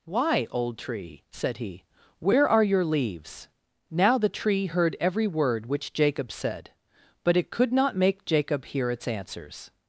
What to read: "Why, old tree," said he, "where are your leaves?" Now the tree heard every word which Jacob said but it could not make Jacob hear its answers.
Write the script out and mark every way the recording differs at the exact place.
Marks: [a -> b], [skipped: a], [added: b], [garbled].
"Why, old tree," said he, "where are your leaves?" Now the tree heard every word which Jacob said but it could not make Jacob hear its answers.